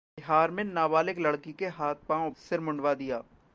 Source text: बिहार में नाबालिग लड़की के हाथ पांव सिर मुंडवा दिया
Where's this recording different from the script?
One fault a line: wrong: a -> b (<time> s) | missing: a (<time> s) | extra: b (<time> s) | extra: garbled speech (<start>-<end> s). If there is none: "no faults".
no faults